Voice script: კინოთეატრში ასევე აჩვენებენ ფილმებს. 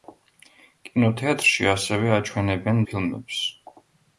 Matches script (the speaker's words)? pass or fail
pass